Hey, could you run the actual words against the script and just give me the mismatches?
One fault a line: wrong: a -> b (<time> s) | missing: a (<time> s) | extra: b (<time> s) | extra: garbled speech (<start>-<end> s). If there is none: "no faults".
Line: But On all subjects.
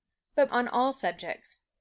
no faults